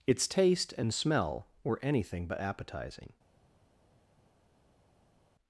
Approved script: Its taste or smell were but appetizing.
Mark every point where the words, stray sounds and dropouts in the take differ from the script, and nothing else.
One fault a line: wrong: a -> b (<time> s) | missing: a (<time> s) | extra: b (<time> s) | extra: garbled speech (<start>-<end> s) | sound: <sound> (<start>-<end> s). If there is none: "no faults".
wrong: or -> and (0.7 s)
extra: anything (1.8 s)